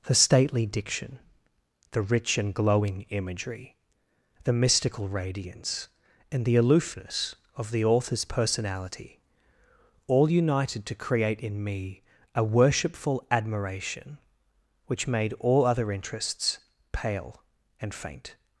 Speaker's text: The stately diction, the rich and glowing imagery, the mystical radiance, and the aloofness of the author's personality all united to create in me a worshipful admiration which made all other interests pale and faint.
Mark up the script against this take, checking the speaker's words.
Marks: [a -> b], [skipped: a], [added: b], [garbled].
The stately diction, the rich and glowing imagery, the mystical radiance, and the aloofness of the author's personality all united to create in me a worshipful admiration which made all other interests pale and faint.